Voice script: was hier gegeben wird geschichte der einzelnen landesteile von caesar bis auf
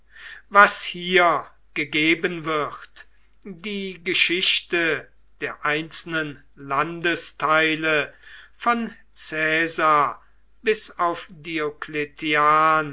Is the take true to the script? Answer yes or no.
no